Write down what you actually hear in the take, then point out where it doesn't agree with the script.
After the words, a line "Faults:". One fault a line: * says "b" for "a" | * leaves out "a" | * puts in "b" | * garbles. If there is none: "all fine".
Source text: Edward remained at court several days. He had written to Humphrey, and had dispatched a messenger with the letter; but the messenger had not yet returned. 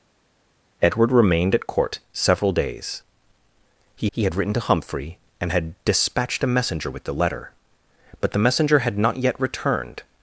Edward remained at court several days. He he had written to Humphrey, and had dispatched a messenger with the letter; but the messenger had not yet returned.
Faults:
* puts in "he"